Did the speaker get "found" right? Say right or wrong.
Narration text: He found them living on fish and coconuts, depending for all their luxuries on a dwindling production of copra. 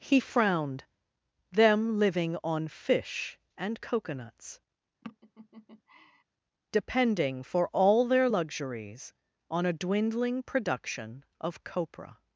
wrong